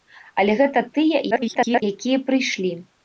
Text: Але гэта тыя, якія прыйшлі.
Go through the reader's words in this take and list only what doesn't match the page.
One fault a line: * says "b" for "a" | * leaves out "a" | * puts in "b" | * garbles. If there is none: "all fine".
* garbles